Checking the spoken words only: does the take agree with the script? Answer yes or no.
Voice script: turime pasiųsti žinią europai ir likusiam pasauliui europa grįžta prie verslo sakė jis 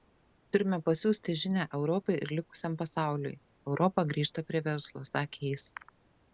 yes